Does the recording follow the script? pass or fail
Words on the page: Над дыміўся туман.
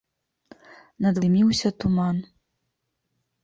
pass